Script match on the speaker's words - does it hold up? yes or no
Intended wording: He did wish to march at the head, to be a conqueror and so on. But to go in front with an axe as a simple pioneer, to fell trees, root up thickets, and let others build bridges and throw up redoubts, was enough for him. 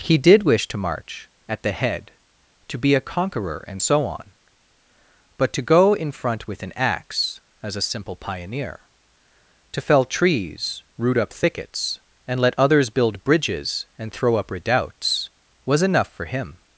yes